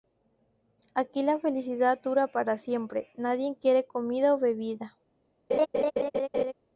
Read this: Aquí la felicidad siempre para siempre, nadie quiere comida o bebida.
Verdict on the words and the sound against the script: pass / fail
fail